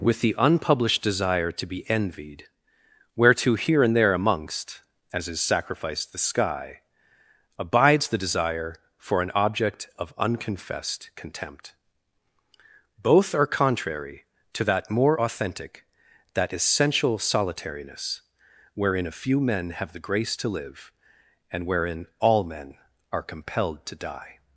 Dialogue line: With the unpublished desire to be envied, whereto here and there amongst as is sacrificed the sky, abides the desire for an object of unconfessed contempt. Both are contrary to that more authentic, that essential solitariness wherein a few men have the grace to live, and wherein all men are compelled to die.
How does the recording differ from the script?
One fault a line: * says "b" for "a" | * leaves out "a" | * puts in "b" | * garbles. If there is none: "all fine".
all fine